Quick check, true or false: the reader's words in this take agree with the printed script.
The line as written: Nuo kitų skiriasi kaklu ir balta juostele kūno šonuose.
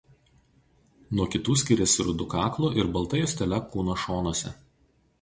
false